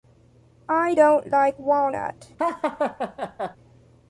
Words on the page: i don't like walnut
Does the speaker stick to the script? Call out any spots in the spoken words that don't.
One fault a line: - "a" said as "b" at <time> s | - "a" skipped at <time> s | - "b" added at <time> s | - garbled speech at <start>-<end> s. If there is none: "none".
none